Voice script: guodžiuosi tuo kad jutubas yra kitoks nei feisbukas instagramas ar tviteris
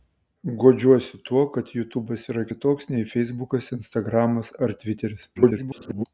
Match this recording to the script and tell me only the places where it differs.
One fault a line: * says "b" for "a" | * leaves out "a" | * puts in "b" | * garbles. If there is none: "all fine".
* garbles